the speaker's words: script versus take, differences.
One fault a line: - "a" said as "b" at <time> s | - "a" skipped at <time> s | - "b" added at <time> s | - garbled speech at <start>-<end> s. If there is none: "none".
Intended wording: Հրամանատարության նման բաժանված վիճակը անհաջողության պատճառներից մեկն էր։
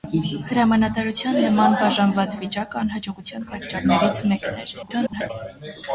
- garbled speech at 4.8-5.3 s